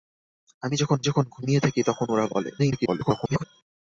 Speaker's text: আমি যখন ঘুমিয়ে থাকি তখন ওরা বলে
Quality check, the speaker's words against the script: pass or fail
fail